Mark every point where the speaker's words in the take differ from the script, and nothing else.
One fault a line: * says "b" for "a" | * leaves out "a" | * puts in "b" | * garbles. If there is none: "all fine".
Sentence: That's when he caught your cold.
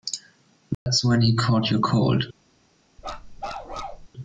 all fine